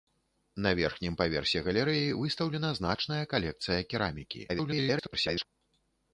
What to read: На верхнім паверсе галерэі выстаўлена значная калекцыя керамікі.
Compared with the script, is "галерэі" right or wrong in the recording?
right